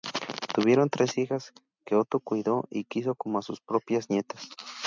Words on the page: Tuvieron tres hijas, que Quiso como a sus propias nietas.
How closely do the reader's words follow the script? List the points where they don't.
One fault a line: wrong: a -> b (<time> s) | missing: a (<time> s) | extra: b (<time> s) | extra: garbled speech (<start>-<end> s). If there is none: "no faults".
extra: Otto cuidó y (1.9 s)